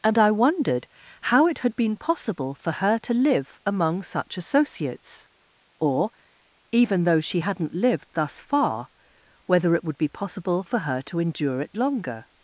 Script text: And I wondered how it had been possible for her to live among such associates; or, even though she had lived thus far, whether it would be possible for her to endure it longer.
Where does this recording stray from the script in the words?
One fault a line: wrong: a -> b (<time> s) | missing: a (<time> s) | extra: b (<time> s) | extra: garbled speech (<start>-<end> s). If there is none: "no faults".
wrong: had -> hadn't (7.4 s)